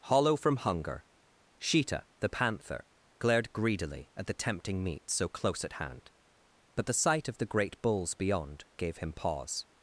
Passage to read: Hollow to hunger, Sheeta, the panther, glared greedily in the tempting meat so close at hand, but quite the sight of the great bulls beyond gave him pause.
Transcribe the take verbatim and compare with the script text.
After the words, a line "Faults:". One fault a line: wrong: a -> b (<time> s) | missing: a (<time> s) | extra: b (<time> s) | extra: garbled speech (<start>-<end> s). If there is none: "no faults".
Hollow from hunger, Sheeta, the panther, glared greedily at the tempting meat so close at hand, but the sight of the great bulls beyond gave him pause.
Faults:
wrong: to -> from (0.3 s)
wrong: in -> at (4.1 s)
missing: quite (6.9 s)